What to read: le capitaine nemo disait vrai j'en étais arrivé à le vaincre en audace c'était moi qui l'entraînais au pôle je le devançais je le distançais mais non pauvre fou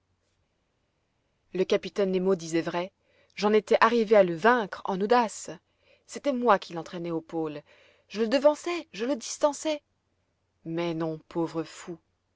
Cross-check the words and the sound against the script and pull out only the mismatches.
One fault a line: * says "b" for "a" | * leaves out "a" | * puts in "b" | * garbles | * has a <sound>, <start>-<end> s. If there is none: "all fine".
all fine